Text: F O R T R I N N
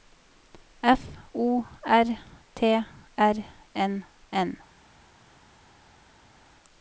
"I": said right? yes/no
no